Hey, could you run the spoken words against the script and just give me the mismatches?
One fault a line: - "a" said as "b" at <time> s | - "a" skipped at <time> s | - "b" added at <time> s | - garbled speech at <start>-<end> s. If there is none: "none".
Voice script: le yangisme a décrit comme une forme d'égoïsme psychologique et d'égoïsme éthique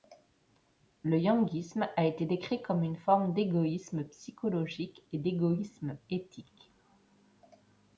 - "été" added at 2.0 s